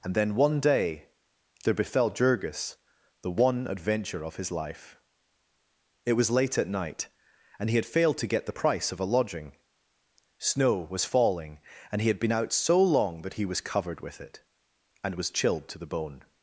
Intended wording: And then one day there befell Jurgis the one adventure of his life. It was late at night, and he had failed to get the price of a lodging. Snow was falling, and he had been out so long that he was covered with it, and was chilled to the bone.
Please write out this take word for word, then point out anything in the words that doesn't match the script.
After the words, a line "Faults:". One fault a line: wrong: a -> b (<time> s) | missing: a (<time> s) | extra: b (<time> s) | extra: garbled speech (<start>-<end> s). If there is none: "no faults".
And then one day there befell Jurgis the one adventure of his life. It was late at night, and he had failed to get the price of a lodging. Snow was falling, and he had been out so long that he was covered with it, and was chilled to the bone.
Faults:
no faults